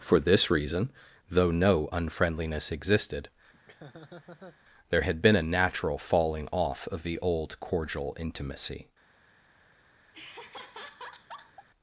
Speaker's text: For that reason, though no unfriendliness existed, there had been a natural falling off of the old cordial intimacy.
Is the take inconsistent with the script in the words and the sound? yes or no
yes